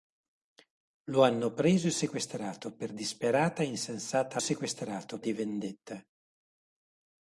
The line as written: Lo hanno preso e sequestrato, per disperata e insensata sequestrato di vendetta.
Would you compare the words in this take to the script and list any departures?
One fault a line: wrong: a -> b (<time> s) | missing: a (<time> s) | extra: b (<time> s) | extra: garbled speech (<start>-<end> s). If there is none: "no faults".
no faults